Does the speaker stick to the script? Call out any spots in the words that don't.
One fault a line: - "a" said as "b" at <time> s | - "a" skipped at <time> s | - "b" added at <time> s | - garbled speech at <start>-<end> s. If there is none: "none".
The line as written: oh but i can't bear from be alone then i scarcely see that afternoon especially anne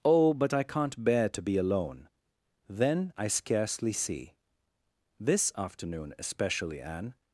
- "from" said as "to" at 1.3 s
- "that" said as "this" at 5.2 s